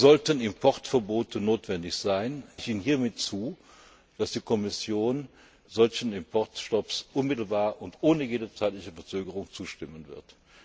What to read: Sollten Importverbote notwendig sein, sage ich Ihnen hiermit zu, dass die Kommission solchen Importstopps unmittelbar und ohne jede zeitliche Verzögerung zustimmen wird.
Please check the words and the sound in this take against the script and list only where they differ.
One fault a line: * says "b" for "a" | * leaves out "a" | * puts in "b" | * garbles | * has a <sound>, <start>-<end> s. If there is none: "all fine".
* leaves out "sage"